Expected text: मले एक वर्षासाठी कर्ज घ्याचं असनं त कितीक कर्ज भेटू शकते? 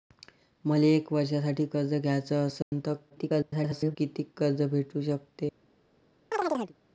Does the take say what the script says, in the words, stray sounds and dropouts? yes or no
no